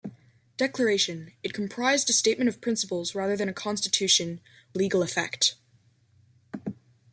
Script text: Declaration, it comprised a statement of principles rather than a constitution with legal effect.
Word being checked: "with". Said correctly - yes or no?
no